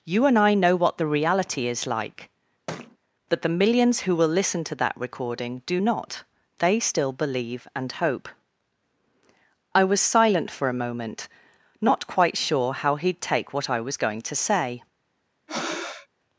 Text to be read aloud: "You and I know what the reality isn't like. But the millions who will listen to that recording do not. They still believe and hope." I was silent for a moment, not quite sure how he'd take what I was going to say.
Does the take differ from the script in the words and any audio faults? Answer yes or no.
yes